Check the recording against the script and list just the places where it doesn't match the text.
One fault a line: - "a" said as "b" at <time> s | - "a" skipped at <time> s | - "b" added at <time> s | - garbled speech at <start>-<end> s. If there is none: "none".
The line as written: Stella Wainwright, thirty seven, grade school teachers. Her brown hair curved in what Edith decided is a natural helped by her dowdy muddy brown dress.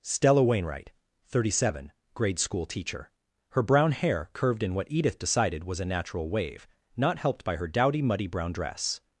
- "teachers" said as "teacher" at 2.6 s
- "is" said as "was" at 5.6 s
- "wave not" added at 6.3 s